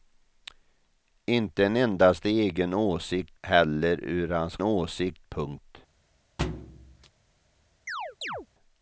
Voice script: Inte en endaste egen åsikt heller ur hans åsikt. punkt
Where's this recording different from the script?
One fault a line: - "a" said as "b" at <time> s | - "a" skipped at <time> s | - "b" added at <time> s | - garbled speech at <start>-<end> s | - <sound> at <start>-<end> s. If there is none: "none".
- thud at 6.4-7.1 s
- chirp at 7.9-8.5 s